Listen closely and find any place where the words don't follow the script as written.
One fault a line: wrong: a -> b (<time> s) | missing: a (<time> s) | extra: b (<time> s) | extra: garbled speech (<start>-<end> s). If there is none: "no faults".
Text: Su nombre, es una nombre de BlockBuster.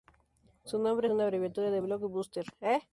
wrong: nombre -> abreviatura (1.2 s)